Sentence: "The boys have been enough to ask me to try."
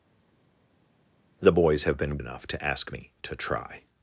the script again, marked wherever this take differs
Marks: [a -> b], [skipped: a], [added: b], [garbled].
"The boys have been enough to ask me to try."